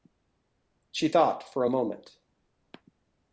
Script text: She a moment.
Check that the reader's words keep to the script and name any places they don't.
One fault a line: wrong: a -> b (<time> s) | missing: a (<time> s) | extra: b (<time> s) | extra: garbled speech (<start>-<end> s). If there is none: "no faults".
extra: thought for (1.1 s)